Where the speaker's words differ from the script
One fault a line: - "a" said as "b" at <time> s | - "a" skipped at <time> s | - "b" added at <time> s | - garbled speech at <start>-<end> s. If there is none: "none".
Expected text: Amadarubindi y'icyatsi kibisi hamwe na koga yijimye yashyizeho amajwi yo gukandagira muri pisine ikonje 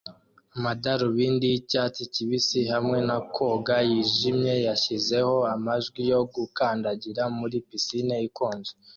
none